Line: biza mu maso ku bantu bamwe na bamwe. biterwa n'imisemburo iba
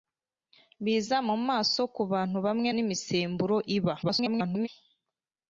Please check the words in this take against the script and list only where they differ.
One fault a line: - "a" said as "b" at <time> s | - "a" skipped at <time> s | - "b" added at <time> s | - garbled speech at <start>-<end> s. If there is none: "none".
- "na bamwe biterwa" skipped at 2.7 s
- garbled speech at 4.0-4.7 s